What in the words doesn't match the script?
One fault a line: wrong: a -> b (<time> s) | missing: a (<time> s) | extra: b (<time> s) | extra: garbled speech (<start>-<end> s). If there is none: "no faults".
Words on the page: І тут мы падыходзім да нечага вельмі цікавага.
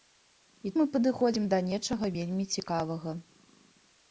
missing: тут (0.7 s)